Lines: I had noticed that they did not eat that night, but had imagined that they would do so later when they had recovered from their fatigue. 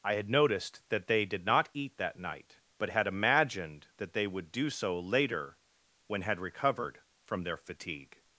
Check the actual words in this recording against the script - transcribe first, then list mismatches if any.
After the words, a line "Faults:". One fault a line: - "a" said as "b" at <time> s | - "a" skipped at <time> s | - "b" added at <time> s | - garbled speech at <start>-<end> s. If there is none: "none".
I had noticed that they did not eat that night, but had imagined that they would do so later when had recovered from their fatigue.
Faults:
- "they" skipped at 6.2 s